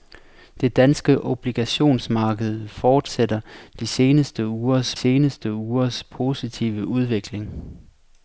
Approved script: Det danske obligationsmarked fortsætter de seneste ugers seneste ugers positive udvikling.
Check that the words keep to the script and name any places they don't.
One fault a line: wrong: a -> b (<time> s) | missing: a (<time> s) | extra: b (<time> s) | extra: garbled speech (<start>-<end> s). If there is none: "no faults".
no faults